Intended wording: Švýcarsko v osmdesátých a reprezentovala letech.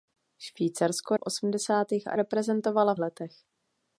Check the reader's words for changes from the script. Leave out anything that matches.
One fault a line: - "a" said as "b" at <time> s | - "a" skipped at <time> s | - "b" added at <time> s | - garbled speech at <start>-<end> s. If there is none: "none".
none